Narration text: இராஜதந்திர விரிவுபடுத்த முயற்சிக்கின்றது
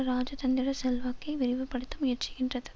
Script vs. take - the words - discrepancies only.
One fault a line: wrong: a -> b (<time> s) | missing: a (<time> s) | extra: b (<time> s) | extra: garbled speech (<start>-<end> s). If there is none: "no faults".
extra: செல்வாக்கை (0.7 s)